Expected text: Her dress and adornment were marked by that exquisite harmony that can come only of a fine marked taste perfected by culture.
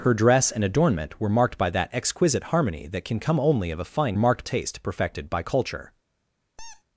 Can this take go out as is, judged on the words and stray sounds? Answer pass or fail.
fail